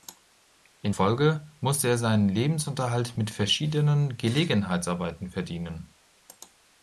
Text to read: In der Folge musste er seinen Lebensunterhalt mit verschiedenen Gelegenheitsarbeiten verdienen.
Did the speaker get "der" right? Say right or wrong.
wrong